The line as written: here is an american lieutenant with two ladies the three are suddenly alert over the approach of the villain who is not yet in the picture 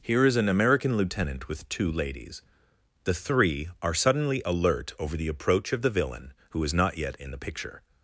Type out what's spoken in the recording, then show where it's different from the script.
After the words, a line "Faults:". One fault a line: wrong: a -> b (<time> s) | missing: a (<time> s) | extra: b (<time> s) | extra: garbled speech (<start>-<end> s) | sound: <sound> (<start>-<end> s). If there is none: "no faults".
here is an american lieutenant with two ladies the three are suddenly alert over the approach of the villain who is not yet in the picture
Faults:
no faults